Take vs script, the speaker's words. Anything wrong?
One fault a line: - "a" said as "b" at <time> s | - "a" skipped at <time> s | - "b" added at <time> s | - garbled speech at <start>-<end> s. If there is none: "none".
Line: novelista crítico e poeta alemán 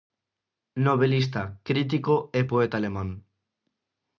none